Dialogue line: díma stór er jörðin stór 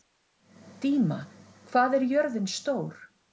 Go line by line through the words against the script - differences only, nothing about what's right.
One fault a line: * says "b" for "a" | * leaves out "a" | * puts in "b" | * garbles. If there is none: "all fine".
* says "hvað" for "stór"